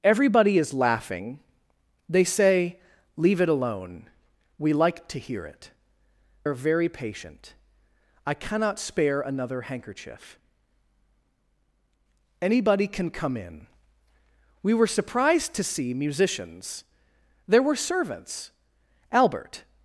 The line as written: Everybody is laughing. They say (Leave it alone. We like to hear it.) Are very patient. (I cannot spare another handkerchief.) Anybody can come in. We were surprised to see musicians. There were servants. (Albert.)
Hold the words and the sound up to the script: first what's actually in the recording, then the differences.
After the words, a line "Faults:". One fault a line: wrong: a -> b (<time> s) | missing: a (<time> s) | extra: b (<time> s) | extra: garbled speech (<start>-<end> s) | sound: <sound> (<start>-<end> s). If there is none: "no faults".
Everybody is laughing. They say (Leave it alone. We like to hear it.) Are very patient. (I cannot spare another handkerchief.) Anybody can come in. We were surprised to see musicians. There were servants. (Albert.)
Faults:
no faults